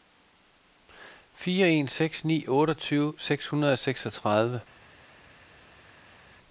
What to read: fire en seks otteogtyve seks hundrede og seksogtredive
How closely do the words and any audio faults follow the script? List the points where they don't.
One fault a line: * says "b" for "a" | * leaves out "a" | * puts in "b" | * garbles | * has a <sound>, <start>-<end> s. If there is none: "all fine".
* puts in "ni"